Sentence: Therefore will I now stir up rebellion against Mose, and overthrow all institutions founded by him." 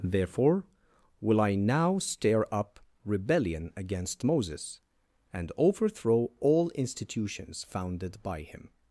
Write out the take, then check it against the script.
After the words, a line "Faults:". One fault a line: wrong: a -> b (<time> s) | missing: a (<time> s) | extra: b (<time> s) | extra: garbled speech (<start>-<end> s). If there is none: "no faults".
Therefore will I now stir up rebellion against Moses, and overthrow all institutions founded by him."
Faults:
wrong: Mose -> Moses (4.2 s)